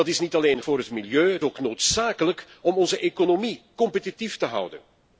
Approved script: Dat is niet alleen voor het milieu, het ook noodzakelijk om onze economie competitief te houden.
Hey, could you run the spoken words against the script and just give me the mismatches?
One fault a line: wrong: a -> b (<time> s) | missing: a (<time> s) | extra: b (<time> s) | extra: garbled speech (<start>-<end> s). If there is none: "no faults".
no faults